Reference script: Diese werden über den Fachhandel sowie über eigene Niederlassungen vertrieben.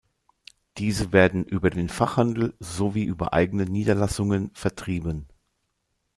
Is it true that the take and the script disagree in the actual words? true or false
false